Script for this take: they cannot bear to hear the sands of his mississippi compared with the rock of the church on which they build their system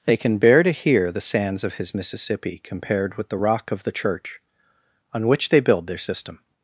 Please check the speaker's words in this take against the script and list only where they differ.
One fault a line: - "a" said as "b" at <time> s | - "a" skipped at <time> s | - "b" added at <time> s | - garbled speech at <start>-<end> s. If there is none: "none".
- "cannot" said as "can" at 0.2 s